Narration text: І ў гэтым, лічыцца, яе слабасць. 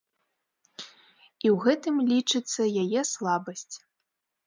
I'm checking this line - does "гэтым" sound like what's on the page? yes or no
yes